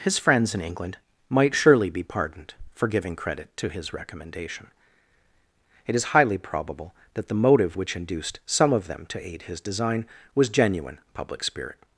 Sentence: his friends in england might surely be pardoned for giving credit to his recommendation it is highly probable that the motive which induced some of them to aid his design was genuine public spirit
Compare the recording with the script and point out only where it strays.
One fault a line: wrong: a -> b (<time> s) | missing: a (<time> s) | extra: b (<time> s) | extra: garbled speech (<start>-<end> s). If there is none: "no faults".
no faults